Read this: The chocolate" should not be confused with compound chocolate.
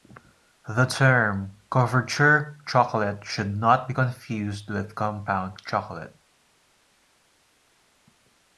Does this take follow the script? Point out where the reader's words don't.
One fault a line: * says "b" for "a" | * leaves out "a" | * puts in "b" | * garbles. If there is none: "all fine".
* puts in "term couverture"